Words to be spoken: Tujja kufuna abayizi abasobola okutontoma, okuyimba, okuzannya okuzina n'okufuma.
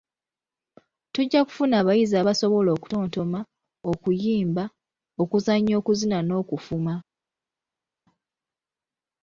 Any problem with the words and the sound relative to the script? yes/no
no